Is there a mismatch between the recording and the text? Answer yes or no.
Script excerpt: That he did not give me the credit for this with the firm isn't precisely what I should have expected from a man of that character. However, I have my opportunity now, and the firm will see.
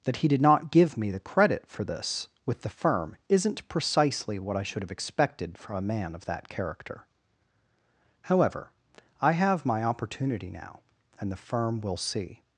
no